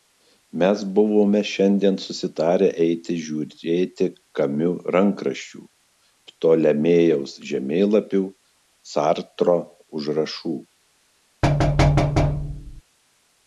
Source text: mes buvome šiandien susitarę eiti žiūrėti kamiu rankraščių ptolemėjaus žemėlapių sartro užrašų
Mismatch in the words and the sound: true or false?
true